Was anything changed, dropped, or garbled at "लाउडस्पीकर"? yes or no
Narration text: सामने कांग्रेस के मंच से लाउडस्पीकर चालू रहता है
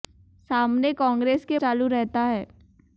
yes